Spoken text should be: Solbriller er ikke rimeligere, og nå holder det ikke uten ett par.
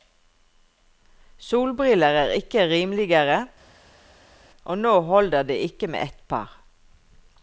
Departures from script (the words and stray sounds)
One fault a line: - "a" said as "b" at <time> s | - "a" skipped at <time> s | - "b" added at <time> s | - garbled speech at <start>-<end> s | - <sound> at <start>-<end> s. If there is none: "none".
- "uten" said as "med" at 5.9 s